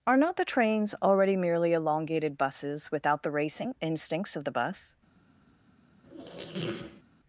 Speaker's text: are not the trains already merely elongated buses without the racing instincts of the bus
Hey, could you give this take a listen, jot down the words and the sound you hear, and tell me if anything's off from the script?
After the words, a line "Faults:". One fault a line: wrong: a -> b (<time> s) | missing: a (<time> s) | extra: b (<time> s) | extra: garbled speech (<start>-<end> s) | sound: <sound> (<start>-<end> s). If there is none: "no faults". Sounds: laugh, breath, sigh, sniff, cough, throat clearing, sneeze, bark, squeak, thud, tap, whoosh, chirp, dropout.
are not the trains already merely elongated buses without the racing instincts of the bus
Faults:
sound: squeak (6.0-7.0 s)